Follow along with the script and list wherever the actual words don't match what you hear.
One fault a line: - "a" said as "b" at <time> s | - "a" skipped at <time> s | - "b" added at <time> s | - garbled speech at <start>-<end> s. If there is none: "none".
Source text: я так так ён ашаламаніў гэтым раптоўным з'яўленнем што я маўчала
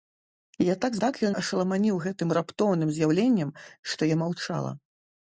none